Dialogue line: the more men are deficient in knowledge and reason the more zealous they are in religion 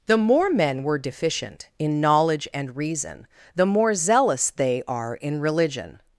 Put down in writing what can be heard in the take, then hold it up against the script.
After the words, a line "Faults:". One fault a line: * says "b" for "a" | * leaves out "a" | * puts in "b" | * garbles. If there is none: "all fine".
the more men were deficient in knowledge and reason the more zealous they are in religion
Faults:
* says "were" for "are"